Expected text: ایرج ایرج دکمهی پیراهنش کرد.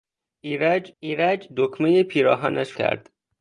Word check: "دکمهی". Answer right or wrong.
right